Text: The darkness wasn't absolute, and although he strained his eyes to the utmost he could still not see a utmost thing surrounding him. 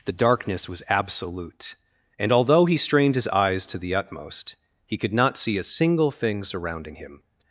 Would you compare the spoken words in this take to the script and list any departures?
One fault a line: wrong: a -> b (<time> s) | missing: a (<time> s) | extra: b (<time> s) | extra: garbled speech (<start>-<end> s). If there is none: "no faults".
wrong: wasn't -> was (0.7 s)
missing: still (5.1 s)
wrong: utmost -> single (5.6 s)